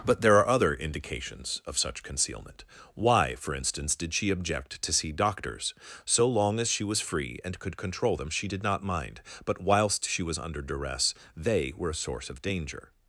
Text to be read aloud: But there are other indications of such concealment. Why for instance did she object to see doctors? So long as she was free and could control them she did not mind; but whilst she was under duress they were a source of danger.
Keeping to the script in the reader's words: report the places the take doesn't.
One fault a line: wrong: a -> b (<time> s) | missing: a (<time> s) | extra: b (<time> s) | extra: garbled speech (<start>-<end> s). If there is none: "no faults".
no faults